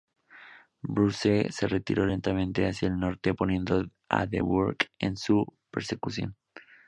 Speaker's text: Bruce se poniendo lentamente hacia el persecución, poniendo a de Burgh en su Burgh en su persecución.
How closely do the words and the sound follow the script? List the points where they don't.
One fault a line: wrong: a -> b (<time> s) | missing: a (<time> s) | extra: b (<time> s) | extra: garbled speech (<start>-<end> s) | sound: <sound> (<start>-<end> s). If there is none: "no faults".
wrong: poniendo -> retiró (1.7 s)
wrong: persecución -> norte (3.0 s)
missing: Burgh en su (5.5 s)